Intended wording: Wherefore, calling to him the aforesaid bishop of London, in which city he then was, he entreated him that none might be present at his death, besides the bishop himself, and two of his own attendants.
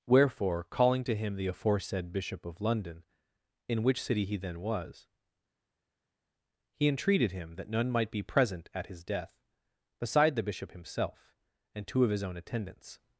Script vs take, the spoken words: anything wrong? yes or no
yes